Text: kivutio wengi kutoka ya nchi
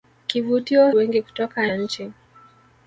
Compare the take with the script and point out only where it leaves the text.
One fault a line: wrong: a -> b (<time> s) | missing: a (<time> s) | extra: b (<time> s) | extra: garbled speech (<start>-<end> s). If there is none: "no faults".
no faults